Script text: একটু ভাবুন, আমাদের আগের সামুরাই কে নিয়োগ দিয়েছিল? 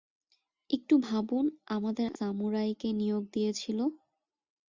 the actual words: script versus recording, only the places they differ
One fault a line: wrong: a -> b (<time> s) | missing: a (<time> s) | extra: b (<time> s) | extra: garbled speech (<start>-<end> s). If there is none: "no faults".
missing: আগের (2.1 s)